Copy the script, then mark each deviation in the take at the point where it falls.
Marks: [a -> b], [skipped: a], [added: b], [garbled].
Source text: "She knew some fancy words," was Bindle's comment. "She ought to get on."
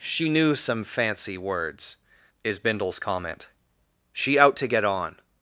"She knew some fancy words," [was -> is] Bindle's comment. "She [ought -> out] to get on."